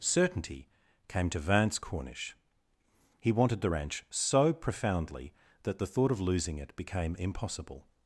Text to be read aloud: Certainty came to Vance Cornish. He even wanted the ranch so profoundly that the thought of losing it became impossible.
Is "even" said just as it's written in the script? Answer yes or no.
no